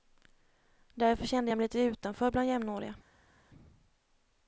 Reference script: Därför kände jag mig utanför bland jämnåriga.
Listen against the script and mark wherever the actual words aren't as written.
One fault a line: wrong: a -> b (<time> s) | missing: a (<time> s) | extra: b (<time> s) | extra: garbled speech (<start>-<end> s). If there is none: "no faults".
extra: lite (1.6 s)